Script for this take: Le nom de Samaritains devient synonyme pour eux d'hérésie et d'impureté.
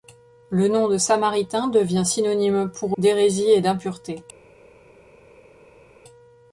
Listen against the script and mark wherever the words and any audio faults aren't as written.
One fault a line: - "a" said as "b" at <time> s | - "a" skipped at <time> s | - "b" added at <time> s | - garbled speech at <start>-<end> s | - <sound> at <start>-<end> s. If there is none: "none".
- "eux" skipped at 3.0 s